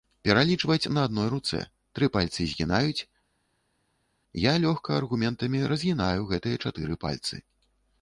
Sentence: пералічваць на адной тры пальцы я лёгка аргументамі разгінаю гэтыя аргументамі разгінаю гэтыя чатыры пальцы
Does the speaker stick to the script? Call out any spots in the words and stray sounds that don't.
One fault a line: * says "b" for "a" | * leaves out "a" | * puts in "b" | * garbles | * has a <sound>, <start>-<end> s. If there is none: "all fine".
* puts in "руцэ"
* puts in "згінаюць"
* leaves out "аргументамі разгінаю гэтыя"